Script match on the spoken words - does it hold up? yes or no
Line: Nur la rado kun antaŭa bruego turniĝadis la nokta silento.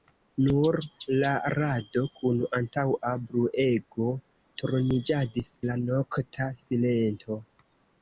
yes